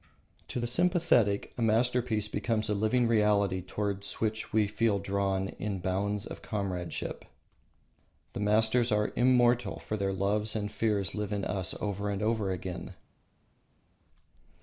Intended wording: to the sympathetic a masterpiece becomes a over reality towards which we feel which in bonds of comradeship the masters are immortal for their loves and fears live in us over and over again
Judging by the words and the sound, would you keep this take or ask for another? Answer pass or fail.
fail